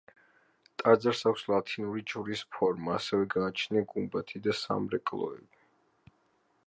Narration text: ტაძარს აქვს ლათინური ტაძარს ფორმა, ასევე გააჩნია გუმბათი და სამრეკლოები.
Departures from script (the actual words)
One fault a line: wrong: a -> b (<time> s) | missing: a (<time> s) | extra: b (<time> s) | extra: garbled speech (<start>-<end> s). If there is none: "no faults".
wrong: ტაძარს -> ჯვრის (2.1 s)